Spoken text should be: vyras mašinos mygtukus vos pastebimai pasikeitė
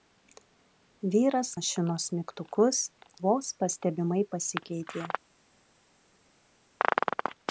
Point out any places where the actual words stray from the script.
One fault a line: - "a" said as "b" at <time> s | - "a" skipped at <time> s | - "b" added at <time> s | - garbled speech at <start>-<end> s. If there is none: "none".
none